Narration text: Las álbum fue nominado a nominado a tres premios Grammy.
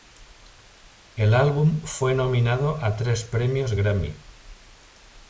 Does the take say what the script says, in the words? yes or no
no